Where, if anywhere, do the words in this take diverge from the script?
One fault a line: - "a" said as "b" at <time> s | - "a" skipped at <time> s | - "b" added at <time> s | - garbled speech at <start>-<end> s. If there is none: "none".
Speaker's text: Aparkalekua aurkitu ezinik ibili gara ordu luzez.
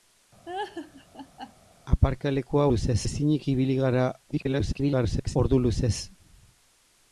- "aurkitu" said as "luzez" at 2.7 s
- garbled speech at 4.3-5.4 s